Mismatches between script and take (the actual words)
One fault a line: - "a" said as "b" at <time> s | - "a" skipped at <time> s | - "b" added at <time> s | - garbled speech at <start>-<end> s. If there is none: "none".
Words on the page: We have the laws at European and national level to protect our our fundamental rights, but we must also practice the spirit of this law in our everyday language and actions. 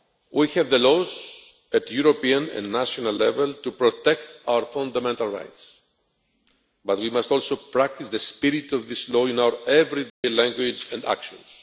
- "our" skipped at 4.7 s